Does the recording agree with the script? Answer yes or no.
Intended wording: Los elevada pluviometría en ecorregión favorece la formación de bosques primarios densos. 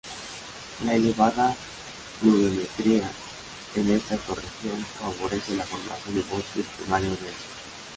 no